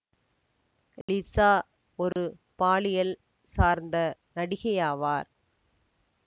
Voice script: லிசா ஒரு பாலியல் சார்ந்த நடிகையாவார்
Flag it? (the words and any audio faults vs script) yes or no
yes